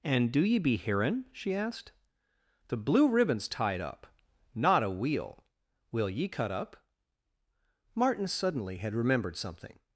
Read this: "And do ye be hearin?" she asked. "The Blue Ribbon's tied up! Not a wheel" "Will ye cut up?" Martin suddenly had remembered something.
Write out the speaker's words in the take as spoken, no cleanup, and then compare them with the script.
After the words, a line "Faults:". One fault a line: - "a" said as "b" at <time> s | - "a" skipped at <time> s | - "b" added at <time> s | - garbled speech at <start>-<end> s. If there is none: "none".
"And do ye be hearin?" she asked. "The Blue Ribbon's tied up! Not a wheel" "Will ye cut up?" Martin suddenly had remembered something.
Faults:
none